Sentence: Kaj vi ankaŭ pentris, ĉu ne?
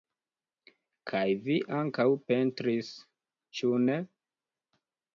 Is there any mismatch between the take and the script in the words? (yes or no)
no